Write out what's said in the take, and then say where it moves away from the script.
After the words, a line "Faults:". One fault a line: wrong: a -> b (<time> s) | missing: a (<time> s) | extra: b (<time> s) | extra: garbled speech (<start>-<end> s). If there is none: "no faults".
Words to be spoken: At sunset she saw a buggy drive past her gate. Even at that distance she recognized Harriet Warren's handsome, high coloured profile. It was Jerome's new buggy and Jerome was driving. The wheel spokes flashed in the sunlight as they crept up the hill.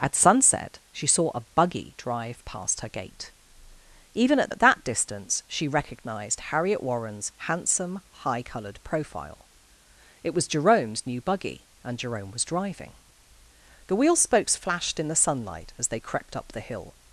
At sunset she saw a buggy drive past her gate. Even at at that distance she recognized Harriet Warren's handsome, high coloured profile. It was Jerome's new buggy and Jerome was driving. The wheel spokes flashed in the sunlight as they crept up the hill.
Faults:
extra: at (4.5 s)